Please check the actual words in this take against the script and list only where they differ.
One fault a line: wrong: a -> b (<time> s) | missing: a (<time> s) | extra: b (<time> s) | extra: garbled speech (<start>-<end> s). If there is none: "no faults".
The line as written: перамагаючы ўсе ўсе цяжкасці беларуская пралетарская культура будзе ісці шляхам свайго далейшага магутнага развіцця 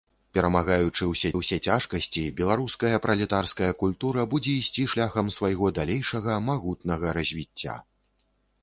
no faults